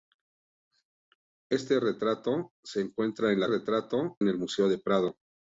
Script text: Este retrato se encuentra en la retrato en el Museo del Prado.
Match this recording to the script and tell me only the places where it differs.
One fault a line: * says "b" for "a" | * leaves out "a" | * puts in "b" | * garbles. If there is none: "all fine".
all fine